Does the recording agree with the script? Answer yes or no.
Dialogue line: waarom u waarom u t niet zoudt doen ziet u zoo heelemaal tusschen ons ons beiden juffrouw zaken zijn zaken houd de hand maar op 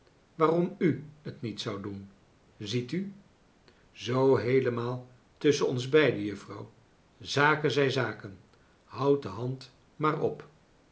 no